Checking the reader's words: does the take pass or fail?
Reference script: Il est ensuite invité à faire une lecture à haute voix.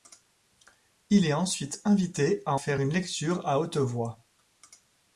pass